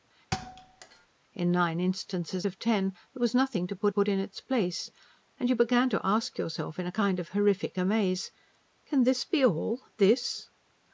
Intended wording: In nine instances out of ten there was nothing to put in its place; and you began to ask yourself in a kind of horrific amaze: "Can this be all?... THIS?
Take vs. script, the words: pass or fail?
fail